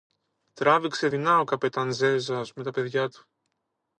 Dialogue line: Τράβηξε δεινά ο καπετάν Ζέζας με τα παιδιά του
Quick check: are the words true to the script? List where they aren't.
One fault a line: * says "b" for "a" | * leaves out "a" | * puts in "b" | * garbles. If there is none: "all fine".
all fine